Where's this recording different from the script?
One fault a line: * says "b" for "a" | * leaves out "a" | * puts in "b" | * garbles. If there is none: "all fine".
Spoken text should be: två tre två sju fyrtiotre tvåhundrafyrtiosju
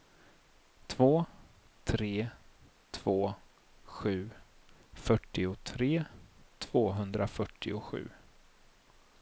all fine